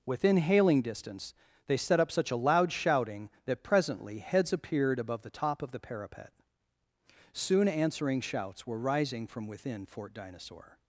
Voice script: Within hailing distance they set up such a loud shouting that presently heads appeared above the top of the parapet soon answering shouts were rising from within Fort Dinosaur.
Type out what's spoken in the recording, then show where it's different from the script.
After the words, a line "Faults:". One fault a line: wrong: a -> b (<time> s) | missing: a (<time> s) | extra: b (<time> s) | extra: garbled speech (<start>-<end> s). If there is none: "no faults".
Within hailing distance they set up such a loud shouting that presently heads appeared above the top of the parapet soon answering shouts were rising from within Fort Dinosaur.
Faults:
no faults